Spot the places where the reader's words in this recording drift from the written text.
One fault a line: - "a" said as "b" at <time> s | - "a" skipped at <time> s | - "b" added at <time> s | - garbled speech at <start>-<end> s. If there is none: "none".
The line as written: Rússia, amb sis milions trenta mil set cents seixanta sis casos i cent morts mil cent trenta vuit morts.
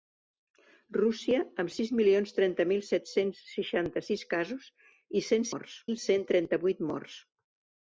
none